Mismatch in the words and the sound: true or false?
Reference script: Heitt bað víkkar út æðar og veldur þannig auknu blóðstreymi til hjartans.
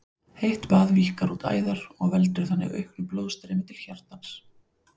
false